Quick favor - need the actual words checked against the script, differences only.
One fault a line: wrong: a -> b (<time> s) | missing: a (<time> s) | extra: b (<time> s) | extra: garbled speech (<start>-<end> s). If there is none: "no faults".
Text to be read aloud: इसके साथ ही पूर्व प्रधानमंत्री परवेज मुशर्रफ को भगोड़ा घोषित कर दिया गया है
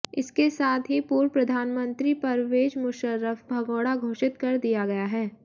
missing: को (3.4 s)